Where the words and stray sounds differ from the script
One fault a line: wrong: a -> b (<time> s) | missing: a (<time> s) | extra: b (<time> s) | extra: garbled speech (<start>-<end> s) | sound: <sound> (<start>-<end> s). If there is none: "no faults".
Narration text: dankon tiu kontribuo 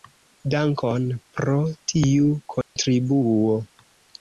extra: pro (1.4 s)
sound: dropout (2.6-2.8 s)